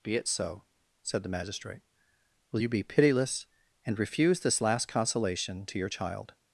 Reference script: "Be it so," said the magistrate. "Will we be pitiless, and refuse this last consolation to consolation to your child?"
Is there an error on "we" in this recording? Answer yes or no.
yes